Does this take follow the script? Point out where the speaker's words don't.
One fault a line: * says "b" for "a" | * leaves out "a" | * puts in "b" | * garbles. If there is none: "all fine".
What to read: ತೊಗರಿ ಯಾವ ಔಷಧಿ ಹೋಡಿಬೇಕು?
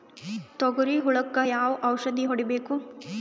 * puts in "ಹುಳಕ"